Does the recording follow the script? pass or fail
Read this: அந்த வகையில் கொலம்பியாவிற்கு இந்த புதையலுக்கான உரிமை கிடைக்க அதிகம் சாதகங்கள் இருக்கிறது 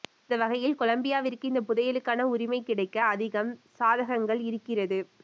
pass